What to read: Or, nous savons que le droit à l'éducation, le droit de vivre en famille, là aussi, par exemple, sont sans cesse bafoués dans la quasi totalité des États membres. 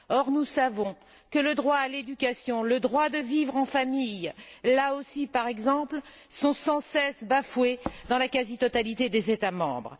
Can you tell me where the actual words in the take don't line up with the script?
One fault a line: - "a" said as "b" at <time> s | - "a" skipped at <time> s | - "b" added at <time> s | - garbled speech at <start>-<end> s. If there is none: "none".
none